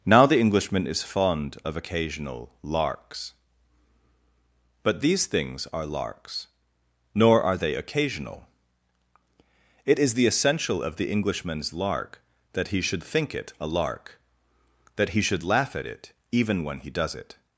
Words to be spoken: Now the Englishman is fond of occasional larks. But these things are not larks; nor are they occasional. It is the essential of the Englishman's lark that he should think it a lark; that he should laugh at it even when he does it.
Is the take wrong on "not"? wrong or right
wrong